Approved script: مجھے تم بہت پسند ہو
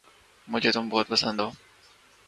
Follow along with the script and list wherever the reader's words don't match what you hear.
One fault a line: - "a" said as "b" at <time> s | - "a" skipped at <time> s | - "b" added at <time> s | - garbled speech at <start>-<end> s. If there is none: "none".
none